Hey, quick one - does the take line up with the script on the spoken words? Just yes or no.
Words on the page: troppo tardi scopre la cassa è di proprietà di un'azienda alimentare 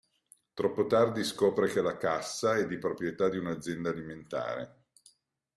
no